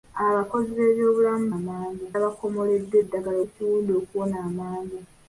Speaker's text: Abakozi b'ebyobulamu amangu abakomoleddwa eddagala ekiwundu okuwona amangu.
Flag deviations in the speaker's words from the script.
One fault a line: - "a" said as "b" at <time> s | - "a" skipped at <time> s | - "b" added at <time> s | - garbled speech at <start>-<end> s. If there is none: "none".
none